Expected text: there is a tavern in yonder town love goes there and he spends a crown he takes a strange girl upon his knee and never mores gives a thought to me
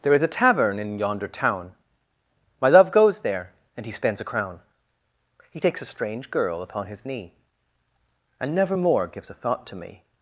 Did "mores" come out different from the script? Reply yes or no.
yes